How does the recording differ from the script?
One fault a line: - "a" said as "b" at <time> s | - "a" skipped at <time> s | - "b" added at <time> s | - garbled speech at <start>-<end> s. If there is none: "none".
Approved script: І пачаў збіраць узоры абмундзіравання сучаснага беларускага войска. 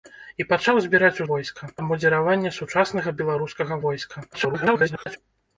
- "узоры" said as "войска" at 1.3 s
- garbled speech at 4.3-5.2 s